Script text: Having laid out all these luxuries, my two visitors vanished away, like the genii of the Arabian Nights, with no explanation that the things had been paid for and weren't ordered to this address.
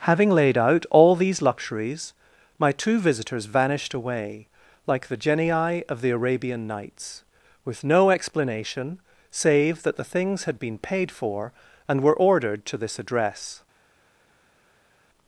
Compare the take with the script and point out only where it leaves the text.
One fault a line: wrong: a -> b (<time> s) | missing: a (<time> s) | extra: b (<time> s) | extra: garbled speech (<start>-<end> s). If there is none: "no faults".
extra: save (9.3 s)
wrong: weren't -> were (12.0 s)